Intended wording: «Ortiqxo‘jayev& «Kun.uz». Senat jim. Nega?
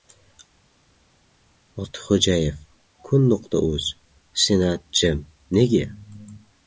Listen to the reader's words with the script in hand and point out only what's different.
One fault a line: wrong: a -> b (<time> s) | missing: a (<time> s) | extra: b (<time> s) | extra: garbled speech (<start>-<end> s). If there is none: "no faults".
no faults